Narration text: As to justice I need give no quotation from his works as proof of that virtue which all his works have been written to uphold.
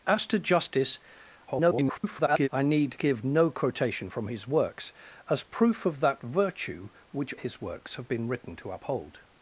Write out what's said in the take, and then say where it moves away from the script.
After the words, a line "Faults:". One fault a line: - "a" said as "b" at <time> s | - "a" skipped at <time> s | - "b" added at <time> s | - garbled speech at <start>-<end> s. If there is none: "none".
As to justice [garbled] I need give no quotation from his works as proof of that virtue which his works have been written to uphold.
Faults:
- garbled speech at 1.5-2.5 s
- "all" skipped at 7.3 s